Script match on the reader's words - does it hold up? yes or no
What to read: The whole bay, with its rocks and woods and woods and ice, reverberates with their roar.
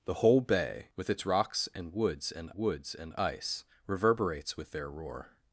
yes